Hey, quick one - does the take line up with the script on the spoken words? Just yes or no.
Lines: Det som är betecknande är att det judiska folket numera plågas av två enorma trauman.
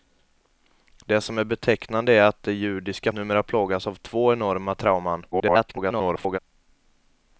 no